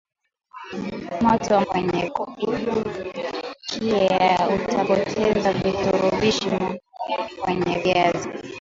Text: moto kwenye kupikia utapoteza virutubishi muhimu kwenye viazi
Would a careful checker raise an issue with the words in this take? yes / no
no